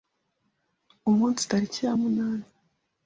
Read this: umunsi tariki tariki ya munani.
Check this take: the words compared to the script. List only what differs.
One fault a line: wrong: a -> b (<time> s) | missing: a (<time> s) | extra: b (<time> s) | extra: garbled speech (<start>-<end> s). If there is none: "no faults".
missing: tariki (1.8 s)